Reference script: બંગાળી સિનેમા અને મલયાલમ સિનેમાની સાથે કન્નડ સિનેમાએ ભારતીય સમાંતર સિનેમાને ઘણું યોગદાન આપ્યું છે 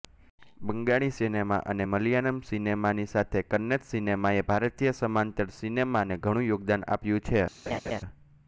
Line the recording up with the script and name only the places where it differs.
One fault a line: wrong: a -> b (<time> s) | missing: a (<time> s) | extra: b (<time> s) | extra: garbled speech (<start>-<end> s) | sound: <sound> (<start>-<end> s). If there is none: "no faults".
sound: laugh (7.7-8.0 s)